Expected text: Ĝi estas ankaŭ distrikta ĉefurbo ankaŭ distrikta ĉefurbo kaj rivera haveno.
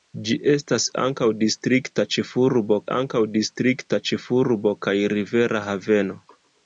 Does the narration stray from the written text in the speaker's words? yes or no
no